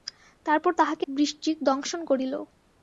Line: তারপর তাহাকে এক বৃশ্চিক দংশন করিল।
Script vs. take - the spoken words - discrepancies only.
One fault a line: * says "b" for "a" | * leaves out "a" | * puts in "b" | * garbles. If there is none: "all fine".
* leaves out "এক"